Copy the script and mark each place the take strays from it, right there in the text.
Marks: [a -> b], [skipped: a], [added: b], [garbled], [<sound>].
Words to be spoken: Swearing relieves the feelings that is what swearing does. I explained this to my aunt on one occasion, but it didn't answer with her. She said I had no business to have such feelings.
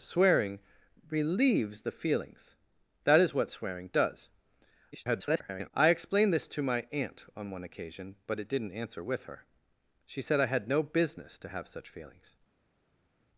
Swearing relieves the feelings that is what swearing does. [garbled] I explained this to my aunt on one occasion, but it didn't answer with her. She said I had no business to have such feelings.